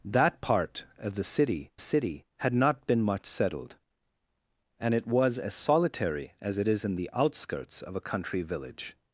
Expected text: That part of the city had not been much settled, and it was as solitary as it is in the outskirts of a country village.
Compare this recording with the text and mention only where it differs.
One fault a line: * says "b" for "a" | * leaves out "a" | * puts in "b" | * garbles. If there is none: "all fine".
* puts in "city"